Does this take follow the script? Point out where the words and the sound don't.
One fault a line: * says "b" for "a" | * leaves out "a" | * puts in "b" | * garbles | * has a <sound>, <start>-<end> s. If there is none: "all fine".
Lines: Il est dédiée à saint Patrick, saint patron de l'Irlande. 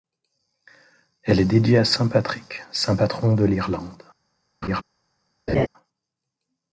* says "Elle" for "Il"
* has a laugh, 4.6-4.8 s
* has a laugh, 5.5-5.7 s